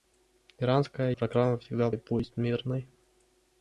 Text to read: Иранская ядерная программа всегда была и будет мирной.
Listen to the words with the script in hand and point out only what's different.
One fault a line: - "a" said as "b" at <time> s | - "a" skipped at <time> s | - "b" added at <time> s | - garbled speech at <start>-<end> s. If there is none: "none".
- "ядерная" skipped at 1.1 s
- "была" skipped at 1.9 s